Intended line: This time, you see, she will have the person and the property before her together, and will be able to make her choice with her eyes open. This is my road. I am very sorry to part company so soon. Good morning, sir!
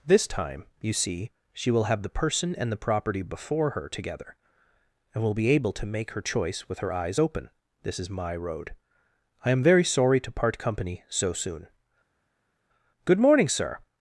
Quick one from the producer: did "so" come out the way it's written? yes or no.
yes